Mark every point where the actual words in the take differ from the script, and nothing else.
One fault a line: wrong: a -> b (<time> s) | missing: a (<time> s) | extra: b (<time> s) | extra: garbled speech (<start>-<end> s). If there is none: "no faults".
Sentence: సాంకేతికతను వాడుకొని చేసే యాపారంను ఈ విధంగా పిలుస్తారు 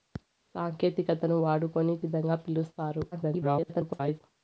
missing: చేసే యాపారంను ఈ (1.9 s)
extra: garbled speech (3.1-4.2 s)